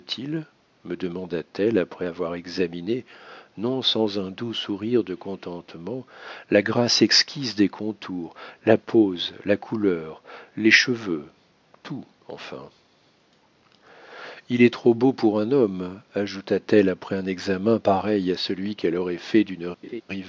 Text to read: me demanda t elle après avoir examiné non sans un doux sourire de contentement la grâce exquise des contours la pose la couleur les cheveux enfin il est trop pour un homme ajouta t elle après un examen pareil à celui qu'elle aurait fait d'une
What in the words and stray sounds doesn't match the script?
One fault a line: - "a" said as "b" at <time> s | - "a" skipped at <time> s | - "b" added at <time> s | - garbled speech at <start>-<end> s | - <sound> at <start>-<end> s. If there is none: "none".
- "tout" added at 11.8 s
- "beau" added at 14.9 s
- laugh at 19.8-20.0 s